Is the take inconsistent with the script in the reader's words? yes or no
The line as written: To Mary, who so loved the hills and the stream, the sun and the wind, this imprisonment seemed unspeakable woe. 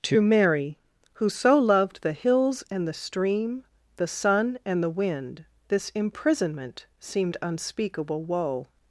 no